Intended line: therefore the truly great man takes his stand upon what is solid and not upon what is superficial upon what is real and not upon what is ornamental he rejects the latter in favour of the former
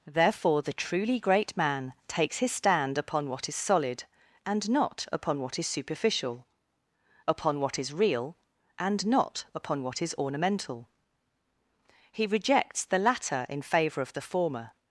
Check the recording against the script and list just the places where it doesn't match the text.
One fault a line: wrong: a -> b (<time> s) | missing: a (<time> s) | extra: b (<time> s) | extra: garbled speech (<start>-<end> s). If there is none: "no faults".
no faults